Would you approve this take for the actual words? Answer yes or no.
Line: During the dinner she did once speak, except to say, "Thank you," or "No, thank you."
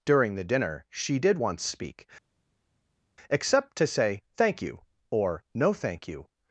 yes